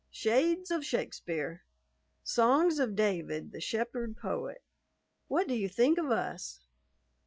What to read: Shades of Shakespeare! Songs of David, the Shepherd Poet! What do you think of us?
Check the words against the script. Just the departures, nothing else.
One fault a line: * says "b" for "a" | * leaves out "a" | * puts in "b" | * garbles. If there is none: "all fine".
all fine